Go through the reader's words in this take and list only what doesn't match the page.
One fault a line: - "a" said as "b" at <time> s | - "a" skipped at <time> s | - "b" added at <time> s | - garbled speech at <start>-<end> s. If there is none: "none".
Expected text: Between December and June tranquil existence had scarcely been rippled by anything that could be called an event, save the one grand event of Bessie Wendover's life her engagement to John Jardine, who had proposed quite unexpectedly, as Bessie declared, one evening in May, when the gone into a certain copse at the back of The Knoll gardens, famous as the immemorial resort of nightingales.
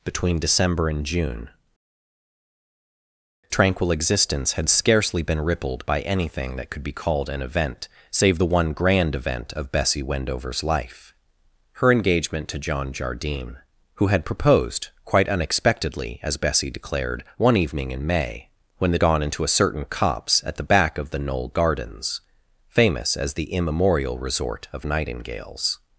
none